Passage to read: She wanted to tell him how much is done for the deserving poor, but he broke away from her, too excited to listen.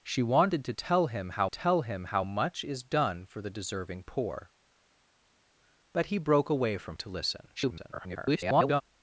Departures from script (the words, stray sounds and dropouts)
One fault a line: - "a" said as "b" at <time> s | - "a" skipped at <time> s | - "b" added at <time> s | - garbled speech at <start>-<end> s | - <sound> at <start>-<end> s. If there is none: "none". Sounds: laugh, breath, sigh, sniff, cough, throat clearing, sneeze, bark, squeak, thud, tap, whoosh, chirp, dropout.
- "tell him how" added at 1.5 s
- "her too excited" skipped at 7.0 s
- garbled speech at 7.6-8.8 s